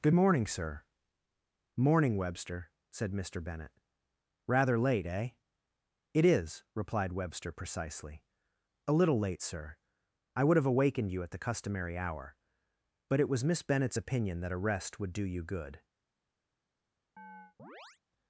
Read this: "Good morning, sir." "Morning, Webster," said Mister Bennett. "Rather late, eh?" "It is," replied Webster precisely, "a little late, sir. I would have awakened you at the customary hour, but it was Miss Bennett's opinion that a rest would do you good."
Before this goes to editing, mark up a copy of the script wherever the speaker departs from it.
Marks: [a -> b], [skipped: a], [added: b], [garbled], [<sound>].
"Good morning, sir." "Morning, Webster," said Mister Bennett. "Rather late, eh?" "It is," replied Webster precisely, "a little late, sir. I would have awakened you at the customary hour, but it was Miss Bennett's opinion that a rest would do you good." [chirp]